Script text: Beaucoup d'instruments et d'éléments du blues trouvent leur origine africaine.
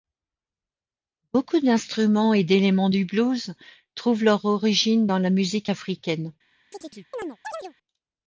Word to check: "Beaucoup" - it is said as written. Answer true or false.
true